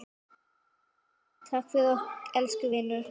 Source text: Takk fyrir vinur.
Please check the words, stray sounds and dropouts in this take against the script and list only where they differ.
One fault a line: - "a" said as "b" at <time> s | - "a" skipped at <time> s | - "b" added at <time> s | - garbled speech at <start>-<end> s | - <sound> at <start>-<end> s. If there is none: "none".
- "okkur elsku" added at 1.9 s